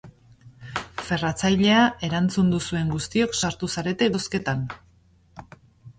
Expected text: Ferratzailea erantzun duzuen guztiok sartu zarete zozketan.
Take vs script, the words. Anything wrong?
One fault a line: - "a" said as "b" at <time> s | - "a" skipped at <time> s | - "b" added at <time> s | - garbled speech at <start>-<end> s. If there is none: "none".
none